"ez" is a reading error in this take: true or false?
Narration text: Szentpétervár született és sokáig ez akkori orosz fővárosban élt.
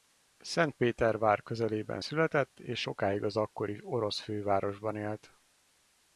true